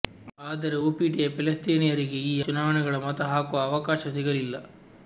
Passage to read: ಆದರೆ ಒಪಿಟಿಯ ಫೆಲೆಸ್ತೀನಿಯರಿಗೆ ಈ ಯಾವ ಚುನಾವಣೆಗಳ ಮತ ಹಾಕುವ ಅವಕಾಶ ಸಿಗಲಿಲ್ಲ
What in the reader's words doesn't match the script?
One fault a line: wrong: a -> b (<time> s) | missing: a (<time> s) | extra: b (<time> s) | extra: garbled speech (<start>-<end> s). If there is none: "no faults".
missing: ಯಾವ (2.4 s)